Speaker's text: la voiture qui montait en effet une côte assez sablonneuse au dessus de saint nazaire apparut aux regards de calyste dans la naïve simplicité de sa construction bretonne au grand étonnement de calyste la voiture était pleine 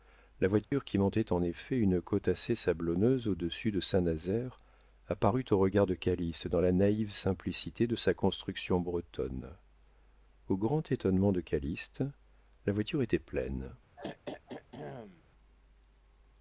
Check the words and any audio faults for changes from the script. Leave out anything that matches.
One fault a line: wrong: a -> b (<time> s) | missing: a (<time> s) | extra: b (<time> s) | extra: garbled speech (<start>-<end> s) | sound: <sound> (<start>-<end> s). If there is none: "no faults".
sound: dropout (0.6-0.7 s)
sound: throat clearing (14.0-15.2 s)